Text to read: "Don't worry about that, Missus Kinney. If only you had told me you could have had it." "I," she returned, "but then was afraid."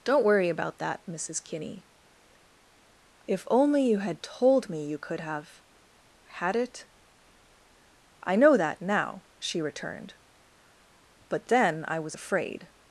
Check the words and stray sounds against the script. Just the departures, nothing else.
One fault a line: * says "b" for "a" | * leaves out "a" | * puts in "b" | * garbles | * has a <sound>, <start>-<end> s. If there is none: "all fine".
* puts in "know that now"
* puts in "I"